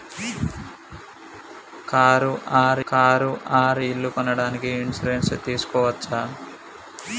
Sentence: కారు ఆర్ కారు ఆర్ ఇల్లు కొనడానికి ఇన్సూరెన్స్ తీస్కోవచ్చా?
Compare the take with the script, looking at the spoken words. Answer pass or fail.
pass